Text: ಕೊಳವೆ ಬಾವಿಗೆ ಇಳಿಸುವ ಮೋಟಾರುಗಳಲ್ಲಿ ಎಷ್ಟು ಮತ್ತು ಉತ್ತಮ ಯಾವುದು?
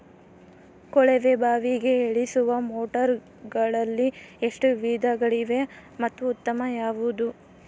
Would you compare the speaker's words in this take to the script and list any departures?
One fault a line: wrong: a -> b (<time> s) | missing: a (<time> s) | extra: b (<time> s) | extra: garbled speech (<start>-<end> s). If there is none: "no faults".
extra: ವಿಧಗಳಿವೆ (4.8 s)